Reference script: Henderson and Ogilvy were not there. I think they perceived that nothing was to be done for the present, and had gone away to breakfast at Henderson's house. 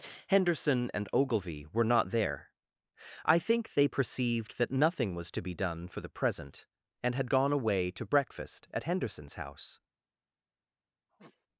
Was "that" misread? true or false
false